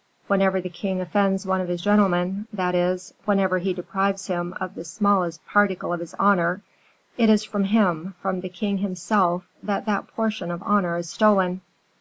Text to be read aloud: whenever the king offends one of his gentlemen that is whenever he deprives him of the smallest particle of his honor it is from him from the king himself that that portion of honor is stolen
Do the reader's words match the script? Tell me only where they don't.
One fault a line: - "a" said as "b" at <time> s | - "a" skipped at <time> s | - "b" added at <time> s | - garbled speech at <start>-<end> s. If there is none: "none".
none